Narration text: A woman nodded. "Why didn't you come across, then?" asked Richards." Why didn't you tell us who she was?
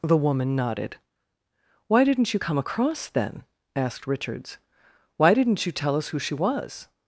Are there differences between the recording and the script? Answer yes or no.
yes